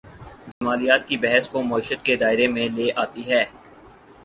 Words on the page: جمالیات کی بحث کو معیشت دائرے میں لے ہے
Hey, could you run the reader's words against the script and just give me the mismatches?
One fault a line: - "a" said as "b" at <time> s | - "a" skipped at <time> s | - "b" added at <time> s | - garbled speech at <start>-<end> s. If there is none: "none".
- "کے" added at 2.0 s
- "آتی" added at 3.0 s